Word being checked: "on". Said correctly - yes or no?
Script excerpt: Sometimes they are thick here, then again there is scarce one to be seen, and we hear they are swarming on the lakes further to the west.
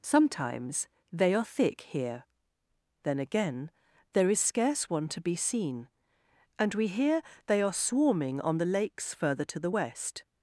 yes